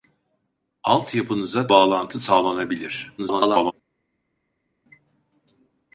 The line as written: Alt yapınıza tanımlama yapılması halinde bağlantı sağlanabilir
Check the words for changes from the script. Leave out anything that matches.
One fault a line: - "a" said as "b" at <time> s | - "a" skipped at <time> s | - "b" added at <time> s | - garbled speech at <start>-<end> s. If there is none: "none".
- "tanımlama yapılması halinde" skipped at 1.7 s
- garbled speech at 3.2-3.7 s